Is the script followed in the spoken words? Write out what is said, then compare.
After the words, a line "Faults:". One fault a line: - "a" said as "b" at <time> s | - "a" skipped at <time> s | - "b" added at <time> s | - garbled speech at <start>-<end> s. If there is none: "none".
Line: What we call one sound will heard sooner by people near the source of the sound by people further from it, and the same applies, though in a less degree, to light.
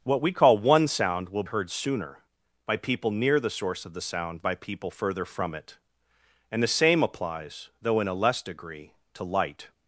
What we call one sound will heard sooner by people near the source of the sound by people further from it, and the same applies, though in a less degree, to light.
Faults:
none